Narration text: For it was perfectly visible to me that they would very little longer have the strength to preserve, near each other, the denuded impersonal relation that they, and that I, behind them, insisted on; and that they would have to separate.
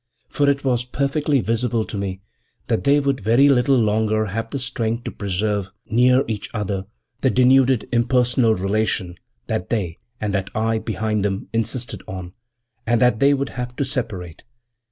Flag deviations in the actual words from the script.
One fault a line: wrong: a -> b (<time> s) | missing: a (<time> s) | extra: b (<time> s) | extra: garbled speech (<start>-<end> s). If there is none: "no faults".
no faults